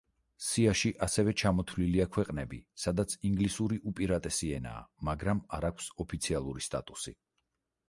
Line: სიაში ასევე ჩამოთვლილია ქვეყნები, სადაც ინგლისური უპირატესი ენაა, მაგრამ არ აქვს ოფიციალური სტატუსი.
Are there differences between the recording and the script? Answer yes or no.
no